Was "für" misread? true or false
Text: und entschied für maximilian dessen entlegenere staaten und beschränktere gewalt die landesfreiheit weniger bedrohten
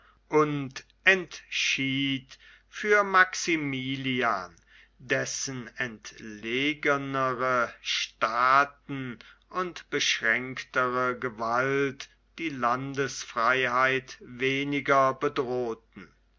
false